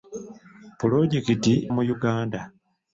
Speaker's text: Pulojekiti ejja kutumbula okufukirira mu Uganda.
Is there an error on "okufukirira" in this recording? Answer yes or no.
yes